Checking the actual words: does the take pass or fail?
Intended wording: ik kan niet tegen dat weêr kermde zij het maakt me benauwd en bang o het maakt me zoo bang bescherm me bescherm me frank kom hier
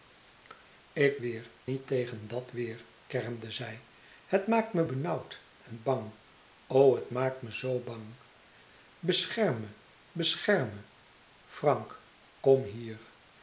fail